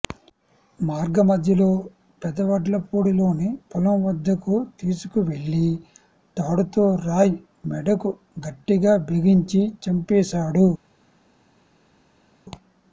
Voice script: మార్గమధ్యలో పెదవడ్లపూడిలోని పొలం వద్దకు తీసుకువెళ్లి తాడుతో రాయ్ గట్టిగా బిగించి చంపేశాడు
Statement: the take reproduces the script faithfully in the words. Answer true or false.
false